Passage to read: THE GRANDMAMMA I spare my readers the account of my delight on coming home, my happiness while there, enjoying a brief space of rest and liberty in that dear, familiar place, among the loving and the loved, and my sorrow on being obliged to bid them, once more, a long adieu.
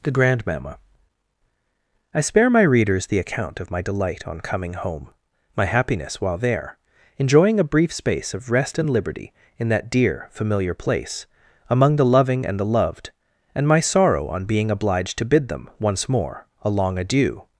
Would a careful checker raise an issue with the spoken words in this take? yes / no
no